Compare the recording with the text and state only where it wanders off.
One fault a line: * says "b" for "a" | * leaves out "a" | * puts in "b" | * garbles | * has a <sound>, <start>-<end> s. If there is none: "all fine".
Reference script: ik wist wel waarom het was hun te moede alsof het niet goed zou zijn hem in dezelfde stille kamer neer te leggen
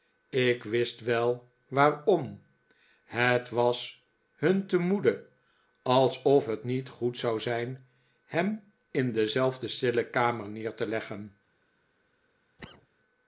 * has a cough, 12.6-12.9 s